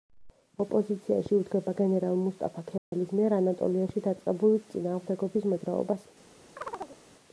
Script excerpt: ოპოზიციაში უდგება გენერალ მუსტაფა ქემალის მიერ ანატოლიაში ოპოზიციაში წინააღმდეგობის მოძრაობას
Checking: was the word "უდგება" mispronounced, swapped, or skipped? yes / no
no